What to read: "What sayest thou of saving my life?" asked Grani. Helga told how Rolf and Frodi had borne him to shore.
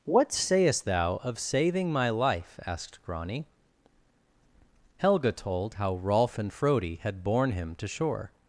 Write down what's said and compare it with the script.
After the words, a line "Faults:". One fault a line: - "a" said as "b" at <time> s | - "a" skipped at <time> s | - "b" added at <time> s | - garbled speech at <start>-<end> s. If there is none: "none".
"What sayest thou of saving my life?" asked Grani. Helga told how Rolf and Frodi had borne him to shore.
Faults:
none